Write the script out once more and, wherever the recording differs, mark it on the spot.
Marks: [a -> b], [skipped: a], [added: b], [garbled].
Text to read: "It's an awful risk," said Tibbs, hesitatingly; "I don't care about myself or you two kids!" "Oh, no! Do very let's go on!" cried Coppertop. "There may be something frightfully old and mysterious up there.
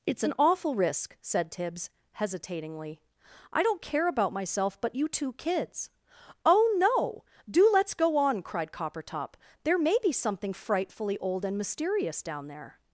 "It's an awful risk," said Tibbs, hesitatingly; "I don't care about myself [or -> but] you two kids!" "Oh, no! Do [skipped: very] let's go on!" cried Coppertop. "There may be something frightfully old and mysterious [up -> down] there.